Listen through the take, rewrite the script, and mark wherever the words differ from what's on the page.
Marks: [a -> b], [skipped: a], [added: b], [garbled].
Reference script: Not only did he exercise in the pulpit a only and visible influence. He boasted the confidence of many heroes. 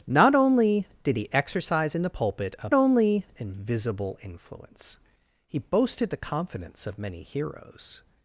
Not only did he exercise in the pulpit a only and visible influence. He boasted the confidence of many heroes.